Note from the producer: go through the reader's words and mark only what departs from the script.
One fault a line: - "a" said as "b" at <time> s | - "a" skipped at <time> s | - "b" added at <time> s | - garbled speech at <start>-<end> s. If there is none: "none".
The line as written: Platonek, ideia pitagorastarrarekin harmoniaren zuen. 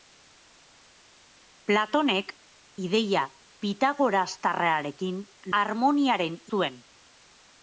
none